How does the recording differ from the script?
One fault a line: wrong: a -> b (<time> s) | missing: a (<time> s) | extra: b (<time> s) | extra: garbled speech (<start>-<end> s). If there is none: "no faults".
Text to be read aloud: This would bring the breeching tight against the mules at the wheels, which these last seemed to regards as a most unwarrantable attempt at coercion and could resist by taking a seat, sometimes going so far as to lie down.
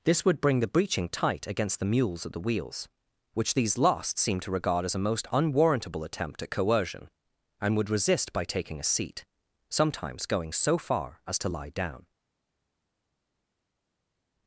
wrong: regards -> regard (4.5 s)
wrong: could -> would (7.8 s)